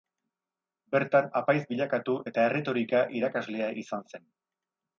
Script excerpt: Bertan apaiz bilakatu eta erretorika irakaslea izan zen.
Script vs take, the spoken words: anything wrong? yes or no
no